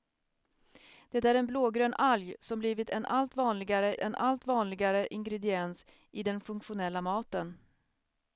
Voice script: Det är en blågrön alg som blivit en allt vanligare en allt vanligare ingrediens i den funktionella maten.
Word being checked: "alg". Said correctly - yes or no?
yes